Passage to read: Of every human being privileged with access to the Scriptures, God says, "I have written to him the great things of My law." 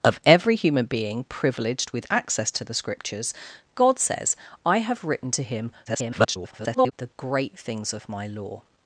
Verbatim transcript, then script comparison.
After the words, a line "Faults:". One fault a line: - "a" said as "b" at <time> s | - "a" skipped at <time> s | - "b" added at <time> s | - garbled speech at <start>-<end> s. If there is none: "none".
Of every human being privileged with access to the Scriptures, God says, "I have written to him [garbled] the great things of My law."
Faults:
- garbled speech at 5.9-6.9 s